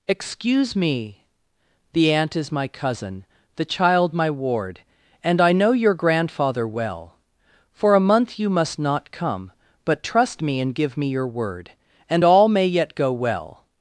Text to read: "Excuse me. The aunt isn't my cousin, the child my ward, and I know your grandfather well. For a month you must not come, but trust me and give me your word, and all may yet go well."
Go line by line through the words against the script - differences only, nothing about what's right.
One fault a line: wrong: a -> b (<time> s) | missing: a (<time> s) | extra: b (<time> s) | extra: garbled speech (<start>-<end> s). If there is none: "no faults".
wrong: isn't -> is (2.4 s)